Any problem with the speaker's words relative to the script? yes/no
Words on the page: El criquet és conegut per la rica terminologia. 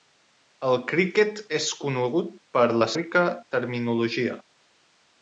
no